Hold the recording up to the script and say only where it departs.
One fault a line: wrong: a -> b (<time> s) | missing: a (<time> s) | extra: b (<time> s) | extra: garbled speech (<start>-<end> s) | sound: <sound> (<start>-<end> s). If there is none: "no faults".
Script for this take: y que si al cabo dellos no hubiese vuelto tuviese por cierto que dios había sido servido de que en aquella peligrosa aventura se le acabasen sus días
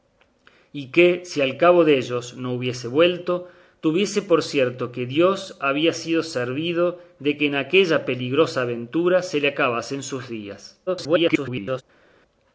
extra: garbled speech (10.9-11.8 s)